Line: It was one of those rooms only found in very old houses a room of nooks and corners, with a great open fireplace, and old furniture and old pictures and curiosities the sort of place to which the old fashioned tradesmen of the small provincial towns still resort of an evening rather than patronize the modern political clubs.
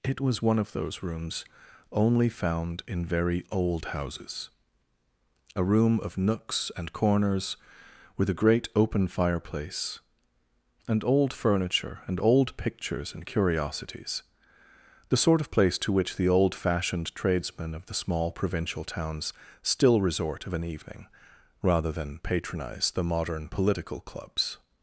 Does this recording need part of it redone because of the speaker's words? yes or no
no